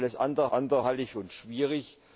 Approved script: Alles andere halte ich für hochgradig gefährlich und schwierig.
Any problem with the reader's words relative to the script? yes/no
yes